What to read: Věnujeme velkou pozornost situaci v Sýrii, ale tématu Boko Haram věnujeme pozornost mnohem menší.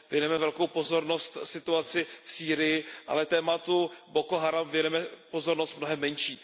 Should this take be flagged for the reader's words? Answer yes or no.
no